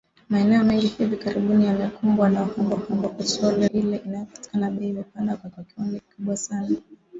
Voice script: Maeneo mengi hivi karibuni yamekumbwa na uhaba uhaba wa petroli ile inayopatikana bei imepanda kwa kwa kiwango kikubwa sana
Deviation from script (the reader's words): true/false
false